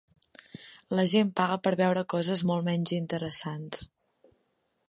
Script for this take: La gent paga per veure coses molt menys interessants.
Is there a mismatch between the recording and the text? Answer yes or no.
no